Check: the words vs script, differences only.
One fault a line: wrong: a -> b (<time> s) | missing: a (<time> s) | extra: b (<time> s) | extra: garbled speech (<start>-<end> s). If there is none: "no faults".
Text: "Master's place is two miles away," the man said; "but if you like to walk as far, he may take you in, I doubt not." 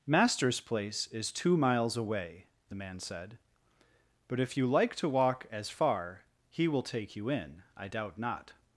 wrong: may -> will (6.7 s)